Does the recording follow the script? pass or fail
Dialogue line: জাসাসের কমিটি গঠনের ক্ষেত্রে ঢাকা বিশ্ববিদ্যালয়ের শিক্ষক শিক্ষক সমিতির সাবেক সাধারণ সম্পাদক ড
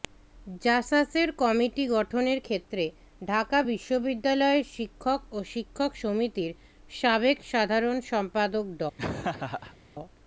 fail